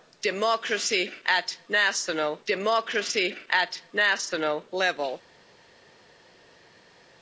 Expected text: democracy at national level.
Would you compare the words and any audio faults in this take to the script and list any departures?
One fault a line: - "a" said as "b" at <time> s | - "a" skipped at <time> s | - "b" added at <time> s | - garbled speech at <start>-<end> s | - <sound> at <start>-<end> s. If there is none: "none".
- "democracy at national" added at 2.5 s